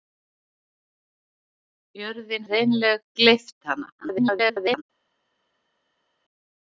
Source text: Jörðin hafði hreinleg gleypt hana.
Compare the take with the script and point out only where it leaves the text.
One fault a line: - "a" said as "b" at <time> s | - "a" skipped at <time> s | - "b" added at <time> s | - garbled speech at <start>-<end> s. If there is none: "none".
- "hafði" skipped at 2.5 s
- garbled speech at 4.0-4.8 s